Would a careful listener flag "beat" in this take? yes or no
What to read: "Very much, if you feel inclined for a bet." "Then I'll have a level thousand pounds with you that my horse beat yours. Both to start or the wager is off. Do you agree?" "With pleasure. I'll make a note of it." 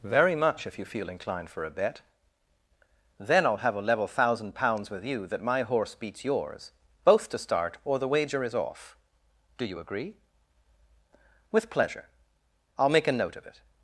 yes